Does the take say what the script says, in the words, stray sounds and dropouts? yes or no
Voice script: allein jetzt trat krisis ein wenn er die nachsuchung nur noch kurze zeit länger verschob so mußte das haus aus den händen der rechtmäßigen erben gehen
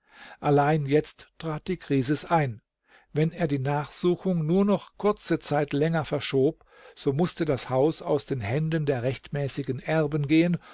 no